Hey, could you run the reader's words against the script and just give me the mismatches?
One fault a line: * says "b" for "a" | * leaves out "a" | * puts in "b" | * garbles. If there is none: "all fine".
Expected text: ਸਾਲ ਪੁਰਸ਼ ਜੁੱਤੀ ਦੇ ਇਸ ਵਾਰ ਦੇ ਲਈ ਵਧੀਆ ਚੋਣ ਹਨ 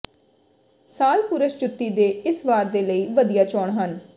all fine